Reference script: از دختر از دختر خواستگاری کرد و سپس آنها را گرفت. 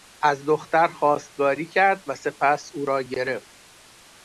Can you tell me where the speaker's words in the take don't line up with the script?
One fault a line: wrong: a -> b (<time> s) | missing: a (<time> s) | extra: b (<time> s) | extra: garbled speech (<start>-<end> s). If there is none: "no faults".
missing: از دختر (0.9 s)
wrong: آنها -> او (2.7 s)